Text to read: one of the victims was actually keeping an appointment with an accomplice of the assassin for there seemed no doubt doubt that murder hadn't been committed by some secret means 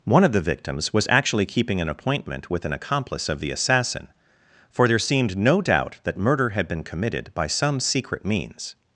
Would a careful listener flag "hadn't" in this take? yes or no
yes